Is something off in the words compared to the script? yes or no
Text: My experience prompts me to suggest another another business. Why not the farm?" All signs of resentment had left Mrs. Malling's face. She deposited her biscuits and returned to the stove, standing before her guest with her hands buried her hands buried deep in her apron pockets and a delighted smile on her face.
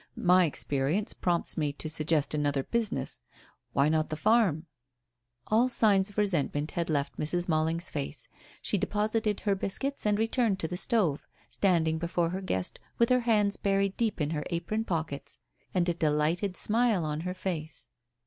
yes